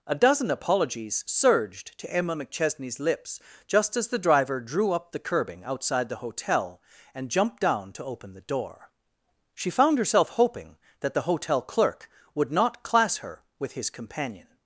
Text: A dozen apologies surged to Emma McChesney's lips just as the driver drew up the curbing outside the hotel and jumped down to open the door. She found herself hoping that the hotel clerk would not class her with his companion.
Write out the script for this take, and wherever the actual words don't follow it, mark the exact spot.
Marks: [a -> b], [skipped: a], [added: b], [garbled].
A dozen apologies surged to Emma McChesney's lips just as the driver drew up the curbing outside the hotel and jumped down to open the door. She found herself hoping that the hotel clerk would not class her with his companion.